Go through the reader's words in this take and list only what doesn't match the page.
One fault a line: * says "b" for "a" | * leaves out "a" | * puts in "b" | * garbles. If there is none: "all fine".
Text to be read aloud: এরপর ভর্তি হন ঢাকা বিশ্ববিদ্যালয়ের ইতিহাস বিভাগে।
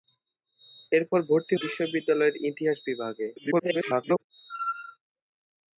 * leaves out "হন ঢাকা"
* garbles